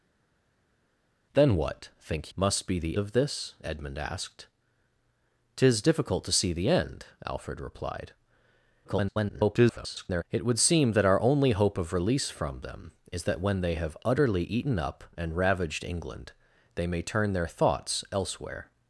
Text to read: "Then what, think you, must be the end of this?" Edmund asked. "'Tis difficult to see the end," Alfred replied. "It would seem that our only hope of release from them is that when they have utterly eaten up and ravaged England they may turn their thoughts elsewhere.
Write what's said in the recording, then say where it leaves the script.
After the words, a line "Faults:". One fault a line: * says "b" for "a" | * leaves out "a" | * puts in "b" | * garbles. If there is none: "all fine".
"Then what, think must be the of this?" Edmund asked. "'Tis difficult to see the end," Alfred replied. [garbled] "It would seem that our only hope of release from them is that when they have utterly eaten up and ravaged England they may turn their thoughts elsewhere.
Faults:
* leaves out "you"
* leaves out "end"
* garbles